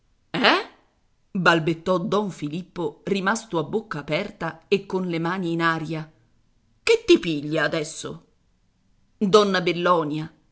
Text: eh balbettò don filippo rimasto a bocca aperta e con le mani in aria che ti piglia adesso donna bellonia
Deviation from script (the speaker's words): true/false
false